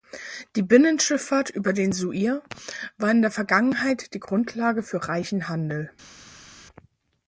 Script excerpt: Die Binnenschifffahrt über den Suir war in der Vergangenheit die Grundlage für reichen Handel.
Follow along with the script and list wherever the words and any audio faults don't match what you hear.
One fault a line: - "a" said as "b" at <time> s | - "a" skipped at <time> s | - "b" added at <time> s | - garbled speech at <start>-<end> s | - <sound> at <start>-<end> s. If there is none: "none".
none